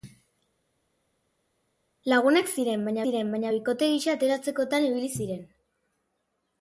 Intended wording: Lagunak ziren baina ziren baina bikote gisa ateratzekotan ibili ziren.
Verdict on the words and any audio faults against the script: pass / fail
pass